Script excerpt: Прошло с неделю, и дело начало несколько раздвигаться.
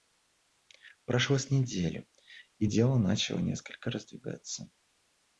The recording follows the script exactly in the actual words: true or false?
true